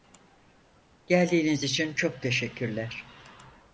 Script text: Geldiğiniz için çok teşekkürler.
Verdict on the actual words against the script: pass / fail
pass